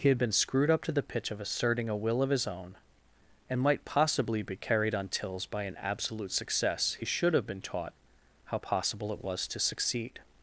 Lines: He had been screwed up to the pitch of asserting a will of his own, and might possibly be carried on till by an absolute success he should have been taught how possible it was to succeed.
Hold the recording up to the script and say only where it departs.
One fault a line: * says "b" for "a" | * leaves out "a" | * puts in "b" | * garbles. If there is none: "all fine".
* says "tills" for "till"